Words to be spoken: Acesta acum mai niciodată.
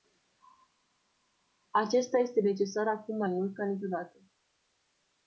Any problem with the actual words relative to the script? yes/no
yes